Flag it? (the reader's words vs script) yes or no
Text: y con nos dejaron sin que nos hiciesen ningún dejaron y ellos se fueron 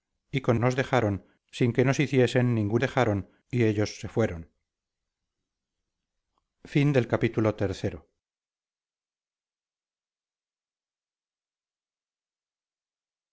no